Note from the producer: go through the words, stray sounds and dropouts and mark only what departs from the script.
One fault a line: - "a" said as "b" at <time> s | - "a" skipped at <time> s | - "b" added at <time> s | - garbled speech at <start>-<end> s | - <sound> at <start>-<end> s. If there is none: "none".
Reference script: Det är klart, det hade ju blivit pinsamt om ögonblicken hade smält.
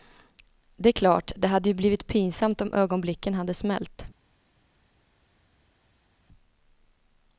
none